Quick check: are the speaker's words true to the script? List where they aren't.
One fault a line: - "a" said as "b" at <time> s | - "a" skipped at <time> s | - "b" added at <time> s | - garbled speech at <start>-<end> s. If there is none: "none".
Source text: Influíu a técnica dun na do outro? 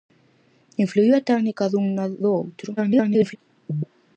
- garbled speech at 2.8-3.4 s